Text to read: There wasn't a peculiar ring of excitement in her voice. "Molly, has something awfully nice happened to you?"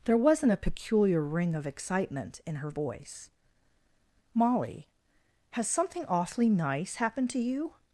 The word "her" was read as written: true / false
true